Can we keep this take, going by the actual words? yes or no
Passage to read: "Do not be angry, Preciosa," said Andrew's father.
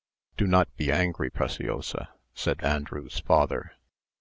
yes